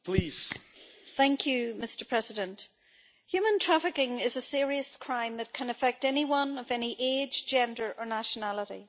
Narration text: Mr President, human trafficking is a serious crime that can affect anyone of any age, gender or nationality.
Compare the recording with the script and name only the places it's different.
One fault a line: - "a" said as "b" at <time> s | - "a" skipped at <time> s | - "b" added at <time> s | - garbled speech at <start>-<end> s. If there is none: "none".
none